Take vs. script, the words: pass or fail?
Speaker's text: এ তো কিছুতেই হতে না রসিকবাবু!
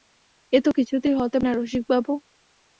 pass